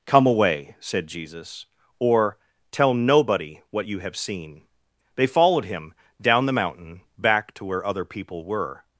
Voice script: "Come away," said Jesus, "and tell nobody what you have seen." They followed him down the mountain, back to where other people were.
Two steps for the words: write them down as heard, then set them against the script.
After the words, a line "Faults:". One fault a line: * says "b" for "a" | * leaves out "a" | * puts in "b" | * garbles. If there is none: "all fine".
"Come away," said Jesus, "or tell nobody what you have seen." They followed him down the mountain, back to where other people were.
Faults:
* says "or" for "and"